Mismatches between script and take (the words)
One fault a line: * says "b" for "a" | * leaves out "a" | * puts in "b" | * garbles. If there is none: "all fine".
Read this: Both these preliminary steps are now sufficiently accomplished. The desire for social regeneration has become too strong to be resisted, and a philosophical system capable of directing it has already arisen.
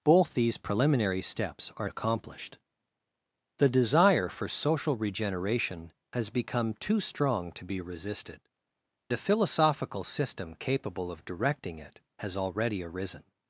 * leaves out "now sufficiently"
* leaves out "and"